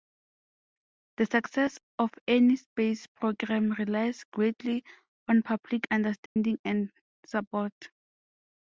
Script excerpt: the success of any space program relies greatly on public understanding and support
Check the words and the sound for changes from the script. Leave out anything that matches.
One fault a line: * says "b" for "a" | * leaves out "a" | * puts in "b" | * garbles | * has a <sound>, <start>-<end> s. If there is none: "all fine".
* has a dropout, 6.3-6.4 s